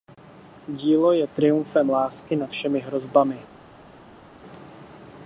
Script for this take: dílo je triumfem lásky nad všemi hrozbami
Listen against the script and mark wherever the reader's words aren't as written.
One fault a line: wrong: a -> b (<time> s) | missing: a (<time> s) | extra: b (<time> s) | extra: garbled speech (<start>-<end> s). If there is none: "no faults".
no faults